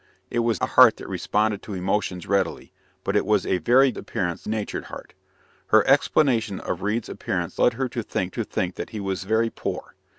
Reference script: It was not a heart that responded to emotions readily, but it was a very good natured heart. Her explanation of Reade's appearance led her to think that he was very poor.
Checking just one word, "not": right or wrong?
wrong